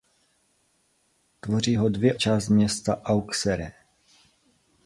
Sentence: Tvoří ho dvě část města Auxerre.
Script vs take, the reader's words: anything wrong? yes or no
no